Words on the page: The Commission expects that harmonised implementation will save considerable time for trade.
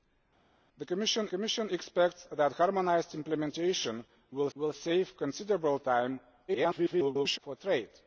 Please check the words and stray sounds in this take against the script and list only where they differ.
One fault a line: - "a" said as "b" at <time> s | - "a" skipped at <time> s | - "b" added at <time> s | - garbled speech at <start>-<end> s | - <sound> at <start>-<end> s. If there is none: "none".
- "Commission" added at 1.3 s
- "will" added at 4.5 s
- garbled speech at 6.5-7.4 s